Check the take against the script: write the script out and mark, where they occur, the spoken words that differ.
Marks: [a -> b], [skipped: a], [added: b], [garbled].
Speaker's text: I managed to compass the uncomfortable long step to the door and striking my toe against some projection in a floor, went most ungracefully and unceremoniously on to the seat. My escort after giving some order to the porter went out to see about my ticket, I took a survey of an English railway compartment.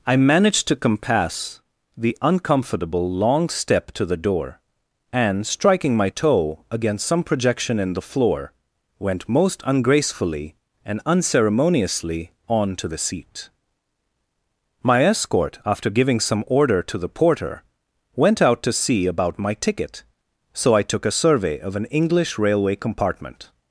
I managed to compass the uncomfortable long step to the door and striking my toe against some projection in [a -> the] floor, went most ungracefully and unceremoniously on to the seat. My escort after giving some order to the porter went out to see about my ticket, [added: so] I took a survey of an English railway compartment.